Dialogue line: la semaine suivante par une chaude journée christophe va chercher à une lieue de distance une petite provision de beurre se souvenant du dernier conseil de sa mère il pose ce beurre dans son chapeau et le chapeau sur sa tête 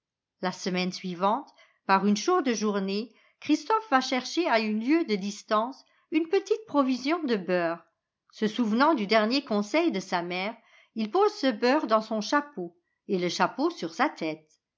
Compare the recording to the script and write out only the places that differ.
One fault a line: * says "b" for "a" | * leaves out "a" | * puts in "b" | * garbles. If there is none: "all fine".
all fine